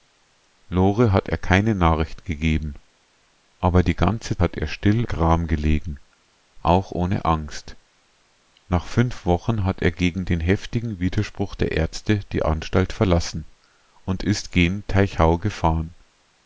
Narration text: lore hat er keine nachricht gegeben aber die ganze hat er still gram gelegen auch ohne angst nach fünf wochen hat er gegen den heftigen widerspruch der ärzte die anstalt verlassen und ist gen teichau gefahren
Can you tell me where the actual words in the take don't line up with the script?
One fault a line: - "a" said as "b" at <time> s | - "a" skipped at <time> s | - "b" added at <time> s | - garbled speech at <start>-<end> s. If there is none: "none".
none